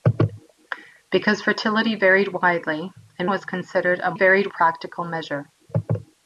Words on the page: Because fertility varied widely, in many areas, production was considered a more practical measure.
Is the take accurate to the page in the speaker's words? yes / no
no